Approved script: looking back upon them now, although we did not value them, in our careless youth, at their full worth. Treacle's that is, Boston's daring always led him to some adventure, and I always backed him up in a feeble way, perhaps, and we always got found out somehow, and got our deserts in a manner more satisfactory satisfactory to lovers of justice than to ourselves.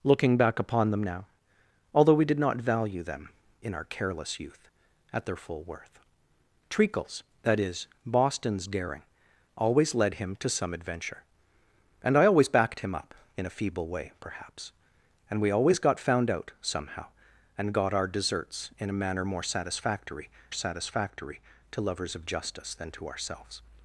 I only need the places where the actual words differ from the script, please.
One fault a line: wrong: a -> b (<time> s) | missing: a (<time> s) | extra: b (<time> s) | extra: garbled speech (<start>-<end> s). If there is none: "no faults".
no faults